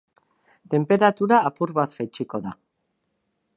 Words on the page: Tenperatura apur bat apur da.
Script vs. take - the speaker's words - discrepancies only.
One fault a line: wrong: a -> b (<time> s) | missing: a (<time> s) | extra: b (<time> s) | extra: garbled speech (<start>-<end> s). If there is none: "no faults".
wrong: apur -> jaitsiko (2.0 s)